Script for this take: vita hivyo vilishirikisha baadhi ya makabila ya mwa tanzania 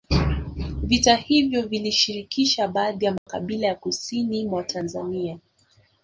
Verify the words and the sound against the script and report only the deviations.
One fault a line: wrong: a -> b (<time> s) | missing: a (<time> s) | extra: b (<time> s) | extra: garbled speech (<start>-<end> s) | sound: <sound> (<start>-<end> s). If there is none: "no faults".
sound: dropout (3.2-3.3 s)
extra: kusini (3.8 s)